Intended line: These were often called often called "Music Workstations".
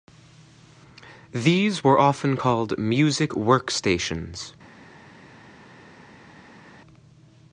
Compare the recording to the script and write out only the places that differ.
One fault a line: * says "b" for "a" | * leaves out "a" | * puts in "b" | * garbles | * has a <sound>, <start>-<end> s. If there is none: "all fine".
* leaves out "often called"